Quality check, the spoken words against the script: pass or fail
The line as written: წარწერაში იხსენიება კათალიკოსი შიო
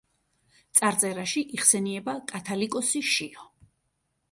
pass